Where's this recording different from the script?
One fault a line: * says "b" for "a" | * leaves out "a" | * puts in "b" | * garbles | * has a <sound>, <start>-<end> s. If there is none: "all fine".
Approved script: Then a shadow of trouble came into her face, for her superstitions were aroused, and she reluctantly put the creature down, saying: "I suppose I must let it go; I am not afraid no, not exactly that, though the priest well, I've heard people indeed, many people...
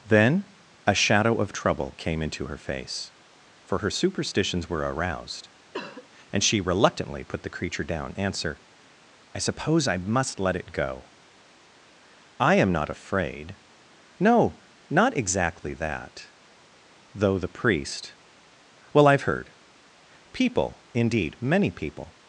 * has a cough, 5.7-6.1 s
* says "answer" for "saying"